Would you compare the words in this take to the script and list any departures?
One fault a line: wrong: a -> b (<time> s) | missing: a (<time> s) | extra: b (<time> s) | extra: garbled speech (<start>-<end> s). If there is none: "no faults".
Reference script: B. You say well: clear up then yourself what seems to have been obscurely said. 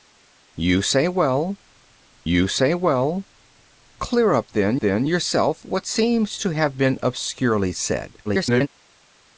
extra: you say well (2.3 s)
extra: then (4.8 s)
extra: garbled speech (8.2-8.7 s)